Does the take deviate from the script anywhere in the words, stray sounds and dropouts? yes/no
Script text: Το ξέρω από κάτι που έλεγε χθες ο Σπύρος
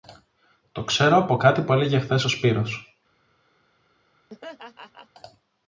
yes